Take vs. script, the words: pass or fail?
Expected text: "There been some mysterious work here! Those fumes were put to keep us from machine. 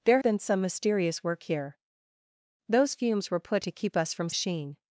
pass